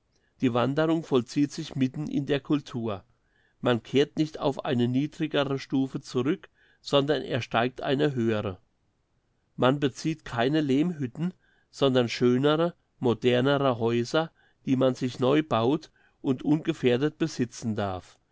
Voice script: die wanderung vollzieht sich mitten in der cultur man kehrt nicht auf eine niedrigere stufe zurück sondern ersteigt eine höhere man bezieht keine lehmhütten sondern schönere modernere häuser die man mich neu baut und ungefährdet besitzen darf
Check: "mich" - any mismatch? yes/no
yes